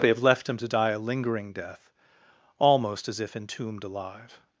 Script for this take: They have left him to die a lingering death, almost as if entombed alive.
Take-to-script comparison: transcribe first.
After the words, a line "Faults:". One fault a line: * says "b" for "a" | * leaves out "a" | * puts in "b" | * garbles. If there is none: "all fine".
They have left him to die a lingering death, almost as if entombed alive.
Faults:
all fine